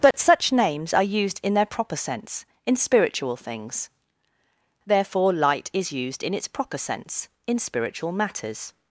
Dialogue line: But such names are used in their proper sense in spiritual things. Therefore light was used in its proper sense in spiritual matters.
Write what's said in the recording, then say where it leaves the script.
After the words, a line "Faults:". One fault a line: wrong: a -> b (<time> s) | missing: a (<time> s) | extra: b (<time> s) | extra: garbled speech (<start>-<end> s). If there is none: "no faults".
But such names are used in their proper sense in spiritual things. Therefore light is used in its proper sense in spiritual matters.
Faults:
wrong: was -> is (5.7 s)